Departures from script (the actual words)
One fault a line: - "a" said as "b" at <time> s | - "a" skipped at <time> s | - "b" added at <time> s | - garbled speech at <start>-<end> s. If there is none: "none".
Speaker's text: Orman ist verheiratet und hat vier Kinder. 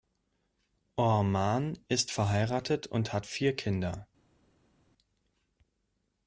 none